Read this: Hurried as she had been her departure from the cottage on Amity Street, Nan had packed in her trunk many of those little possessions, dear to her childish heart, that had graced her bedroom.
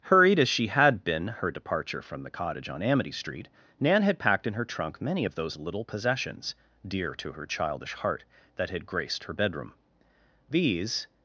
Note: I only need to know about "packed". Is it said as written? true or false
true